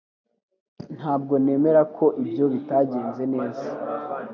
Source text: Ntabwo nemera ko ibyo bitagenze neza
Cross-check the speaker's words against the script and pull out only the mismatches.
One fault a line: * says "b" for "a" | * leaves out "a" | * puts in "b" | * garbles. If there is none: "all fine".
all fine